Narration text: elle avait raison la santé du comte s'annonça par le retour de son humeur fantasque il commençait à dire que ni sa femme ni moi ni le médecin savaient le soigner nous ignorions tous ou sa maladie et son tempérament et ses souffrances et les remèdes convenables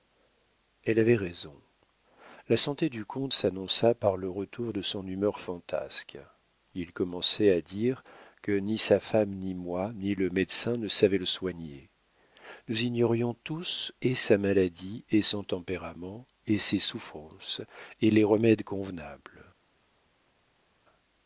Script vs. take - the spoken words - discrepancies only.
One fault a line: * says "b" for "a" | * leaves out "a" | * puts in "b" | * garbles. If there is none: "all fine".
* puts in "ne"
* says "et" for "ou"